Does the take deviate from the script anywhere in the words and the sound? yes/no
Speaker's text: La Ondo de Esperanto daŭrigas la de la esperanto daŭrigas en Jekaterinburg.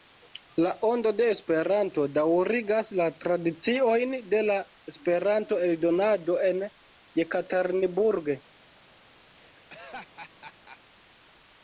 yes